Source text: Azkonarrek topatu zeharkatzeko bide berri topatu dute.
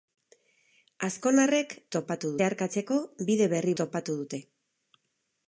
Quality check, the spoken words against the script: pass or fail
pass